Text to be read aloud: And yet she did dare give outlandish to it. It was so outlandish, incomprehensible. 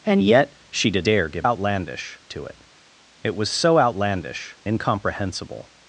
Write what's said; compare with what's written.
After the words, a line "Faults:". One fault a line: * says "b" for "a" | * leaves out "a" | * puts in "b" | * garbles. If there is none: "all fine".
And yet she did dare give outlandish to it. It was so outlandish, incomprehensible.
Faults:
all fine